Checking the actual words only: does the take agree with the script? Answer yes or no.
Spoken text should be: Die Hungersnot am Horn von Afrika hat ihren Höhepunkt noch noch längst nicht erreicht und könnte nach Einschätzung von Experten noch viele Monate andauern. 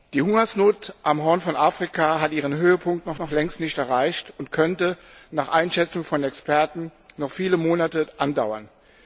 yes